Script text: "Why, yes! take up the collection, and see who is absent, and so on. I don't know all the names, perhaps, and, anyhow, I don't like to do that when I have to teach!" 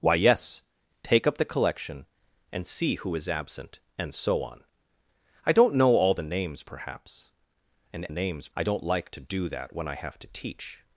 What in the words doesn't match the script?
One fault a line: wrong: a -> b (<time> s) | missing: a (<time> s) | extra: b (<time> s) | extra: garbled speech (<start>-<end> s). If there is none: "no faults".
wrong: anyhow -> names (8.1 s)